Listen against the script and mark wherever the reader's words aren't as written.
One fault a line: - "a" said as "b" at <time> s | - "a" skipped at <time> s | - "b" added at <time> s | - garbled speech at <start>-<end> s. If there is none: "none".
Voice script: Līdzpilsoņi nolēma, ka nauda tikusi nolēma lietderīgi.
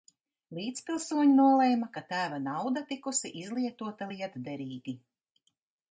- "tēva" added at 2.1 s
- "nolēma" said as "izlietota" at 3.4 s